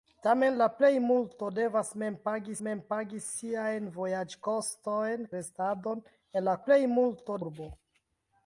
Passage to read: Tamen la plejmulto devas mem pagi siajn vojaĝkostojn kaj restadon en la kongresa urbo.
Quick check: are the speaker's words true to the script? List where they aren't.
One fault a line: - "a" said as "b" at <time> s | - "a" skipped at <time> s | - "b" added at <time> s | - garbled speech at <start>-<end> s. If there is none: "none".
- "mem pagi" added at 2.7 s
- "kaj" skipped at 5.3 s
- "kongresa" said as "plejmulto" at 6.6 s